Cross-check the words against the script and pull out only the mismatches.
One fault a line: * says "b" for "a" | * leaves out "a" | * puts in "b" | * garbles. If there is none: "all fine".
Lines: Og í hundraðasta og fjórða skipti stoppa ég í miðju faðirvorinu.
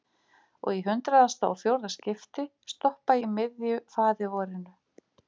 * leaves out "ég"